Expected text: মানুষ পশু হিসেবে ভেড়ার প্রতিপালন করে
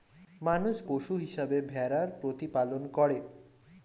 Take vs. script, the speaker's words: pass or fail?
pass